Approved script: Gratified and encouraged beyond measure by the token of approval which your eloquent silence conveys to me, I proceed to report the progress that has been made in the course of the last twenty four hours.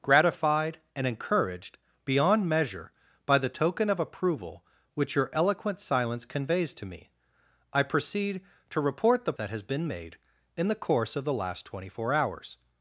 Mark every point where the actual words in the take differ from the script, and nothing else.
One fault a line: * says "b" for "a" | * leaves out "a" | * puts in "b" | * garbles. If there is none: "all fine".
* leaves out "progress"